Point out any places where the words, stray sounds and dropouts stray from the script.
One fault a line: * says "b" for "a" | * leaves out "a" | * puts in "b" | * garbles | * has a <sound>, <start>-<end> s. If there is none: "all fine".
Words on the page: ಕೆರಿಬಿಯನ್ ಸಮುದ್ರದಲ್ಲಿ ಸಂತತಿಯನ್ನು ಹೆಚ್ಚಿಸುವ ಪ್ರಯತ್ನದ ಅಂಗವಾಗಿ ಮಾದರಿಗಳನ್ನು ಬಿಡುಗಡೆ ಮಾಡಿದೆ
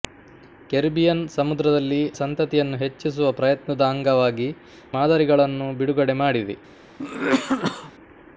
* has a cough, 7.0-7.9 s